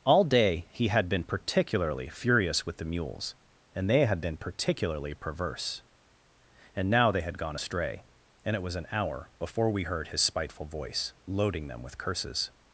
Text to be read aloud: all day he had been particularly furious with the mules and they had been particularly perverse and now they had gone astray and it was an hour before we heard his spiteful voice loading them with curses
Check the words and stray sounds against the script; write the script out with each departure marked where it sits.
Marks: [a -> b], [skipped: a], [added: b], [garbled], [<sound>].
all day he had been particularly furious with the mules and they had been particularly perverse and now they had gone astray and it was an hour before we heard his spiteful voice loading them with curses